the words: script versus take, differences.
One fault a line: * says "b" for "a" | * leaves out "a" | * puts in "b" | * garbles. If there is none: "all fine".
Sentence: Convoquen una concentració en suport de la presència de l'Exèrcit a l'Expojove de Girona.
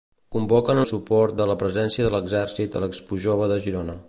* leaves out "una concentració"